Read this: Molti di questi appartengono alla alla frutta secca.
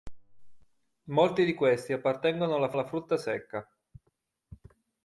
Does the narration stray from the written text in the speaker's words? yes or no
no